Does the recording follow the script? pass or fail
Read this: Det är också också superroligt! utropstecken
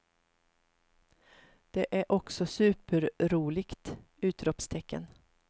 fail